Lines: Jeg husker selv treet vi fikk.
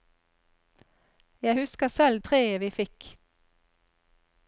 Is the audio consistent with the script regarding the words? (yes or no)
yes